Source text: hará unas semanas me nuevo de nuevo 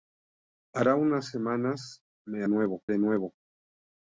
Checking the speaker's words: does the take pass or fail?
pass